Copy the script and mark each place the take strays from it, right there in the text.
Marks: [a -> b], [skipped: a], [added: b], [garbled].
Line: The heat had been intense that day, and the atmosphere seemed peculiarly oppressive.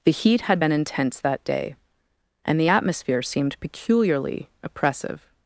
The heat had been intense that day, and the atmosphere seemed peculiarly oppressive.